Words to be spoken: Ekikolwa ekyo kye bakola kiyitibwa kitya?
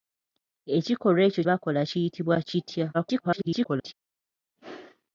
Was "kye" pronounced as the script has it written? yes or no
no